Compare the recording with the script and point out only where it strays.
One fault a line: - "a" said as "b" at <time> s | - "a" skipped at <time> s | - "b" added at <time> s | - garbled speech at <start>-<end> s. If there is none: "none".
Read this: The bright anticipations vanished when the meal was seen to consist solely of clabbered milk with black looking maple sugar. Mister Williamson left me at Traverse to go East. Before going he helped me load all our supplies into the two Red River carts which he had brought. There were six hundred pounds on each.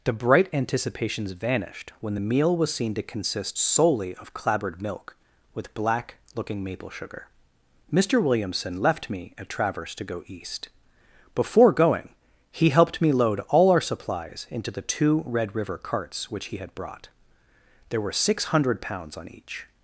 none